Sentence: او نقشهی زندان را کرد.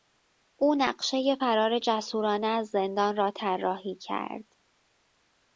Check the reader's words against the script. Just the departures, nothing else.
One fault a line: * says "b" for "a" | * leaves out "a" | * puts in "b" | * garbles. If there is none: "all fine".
* puts in "فرار جسورانه از"
* puts in "طراحی"